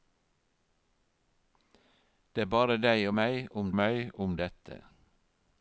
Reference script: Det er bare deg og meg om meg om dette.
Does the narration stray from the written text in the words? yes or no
no